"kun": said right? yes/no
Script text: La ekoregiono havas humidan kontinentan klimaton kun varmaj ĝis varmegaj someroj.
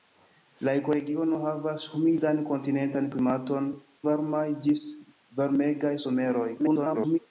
no